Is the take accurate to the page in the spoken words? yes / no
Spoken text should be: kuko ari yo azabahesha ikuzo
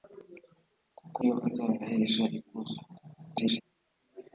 no